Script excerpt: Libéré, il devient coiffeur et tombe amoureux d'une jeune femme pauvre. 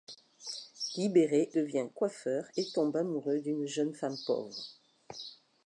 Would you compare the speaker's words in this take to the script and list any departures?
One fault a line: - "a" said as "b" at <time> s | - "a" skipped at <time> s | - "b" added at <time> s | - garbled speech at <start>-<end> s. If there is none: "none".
- "il" skipped at 1.5 s